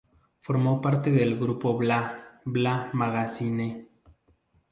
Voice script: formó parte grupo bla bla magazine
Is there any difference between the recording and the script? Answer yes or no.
yes